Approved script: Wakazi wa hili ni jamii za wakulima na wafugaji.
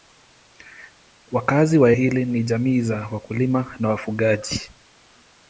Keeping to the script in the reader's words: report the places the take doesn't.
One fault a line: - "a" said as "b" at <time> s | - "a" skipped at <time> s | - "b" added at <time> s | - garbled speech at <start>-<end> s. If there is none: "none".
none